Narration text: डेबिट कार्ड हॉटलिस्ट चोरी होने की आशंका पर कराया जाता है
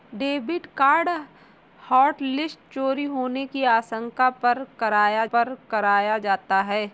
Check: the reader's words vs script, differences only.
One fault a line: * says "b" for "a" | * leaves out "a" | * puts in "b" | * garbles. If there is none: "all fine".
* puts in "पर कराया"